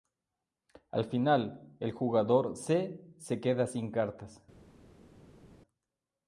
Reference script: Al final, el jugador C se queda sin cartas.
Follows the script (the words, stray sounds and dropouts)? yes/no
yes